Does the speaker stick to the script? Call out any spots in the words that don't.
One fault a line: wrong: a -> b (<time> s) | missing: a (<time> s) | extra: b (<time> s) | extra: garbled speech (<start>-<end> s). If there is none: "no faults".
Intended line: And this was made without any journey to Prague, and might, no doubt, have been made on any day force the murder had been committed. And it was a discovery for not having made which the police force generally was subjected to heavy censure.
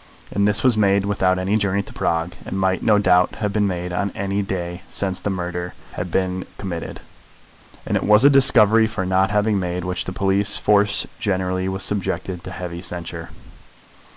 wrong: force -> since (4.9 s)